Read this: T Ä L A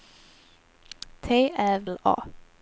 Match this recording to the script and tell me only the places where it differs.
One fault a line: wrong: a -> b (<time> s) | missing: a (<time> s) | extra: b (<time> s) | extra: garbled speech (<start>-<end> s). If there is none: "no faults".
no faults